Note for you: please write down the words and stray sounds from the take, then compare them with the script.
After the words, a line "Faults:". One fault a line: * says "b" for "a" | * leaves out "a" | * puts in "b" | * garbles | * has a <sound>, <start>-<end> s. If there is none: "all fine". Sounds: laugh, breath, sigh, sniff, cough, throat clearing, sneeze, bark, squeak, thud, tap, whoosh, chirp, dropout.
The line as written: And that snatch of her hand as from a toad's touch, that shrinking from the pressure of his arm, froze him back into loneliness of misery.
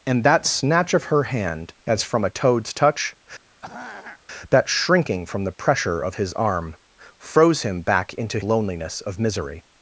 And that snatch of her hand as from a toad's touch, that shrinking from the pressure of his arm, froze him back into loneliness of misery.
Faults:
* has a throat clearing, 3.5-4.2 s